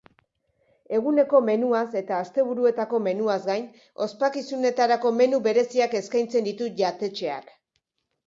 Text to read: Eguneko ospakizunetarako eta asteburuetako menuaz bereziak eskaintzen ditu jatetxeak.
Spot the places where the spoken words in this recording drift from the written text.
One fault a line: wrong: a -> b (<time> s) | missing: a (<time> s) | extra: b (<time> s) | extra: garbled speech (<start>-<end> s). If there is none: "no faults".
wrong: ospakizunetarako -> menuaz (1.5 s)
extra: gain ospakizunetarako menu (3.5 s)